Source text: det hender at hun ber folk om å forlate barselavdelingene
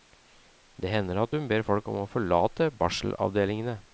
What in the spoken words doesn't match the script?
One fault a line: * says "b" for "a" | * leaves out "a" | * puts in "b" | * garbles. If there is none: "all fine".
all fine